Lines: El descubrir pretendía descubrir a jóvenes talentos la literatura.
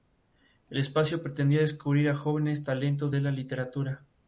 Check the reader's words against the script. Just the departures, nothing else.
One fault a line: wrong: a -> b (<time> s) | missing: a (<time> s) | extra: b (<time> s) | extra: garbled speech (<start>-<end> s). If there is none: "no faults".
wrong: descubrir -> espacio (0.8 s)
extra: de (3.1 s)